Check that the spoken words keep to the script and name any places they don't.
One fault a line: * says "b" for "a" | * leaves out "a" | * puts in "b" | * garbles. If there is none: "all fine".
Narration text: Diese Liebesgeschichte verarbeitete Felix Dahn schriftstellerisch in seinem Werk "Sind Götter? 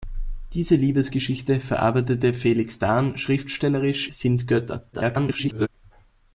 * leaves out "in seinem Werk"
* garbles